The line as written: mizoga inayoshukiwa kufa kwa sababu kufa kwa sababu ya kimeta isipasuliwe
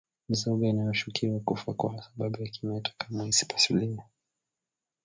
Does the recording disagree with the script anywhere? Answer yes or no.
yes